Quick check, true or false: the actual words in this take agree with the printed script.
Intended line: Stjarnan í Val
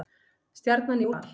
true